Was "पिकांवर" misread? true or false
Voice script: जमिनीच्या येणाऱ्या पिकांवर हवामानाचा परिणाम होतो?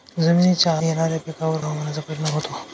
false